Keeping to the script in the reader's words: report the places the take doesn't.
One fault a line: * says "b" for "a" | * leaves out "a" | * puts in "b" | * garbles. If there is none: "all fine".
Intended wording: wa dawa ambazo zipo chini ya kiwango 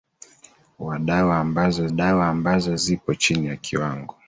* puts in "dawa ambazo"